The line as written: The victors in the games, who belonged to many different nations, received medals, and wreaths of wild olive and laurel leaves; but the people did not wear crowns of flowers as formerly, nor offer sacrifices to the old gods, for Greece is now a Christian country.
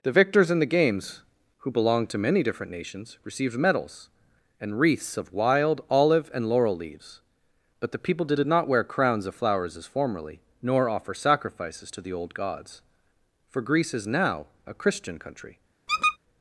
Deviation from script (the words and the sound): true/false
true